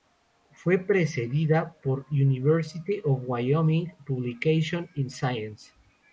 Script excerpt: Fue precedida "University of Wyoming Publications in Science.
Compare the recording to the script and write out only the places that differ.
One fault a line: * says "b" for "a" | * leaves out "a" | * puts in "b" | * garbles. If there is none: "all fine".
* puts in "por"